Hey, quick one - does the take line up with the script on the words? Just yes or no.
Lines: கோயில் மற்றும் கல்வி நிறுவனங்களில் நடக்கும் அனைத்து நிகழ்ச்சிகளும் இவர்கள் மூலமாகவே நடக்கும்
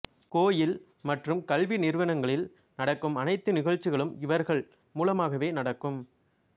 yes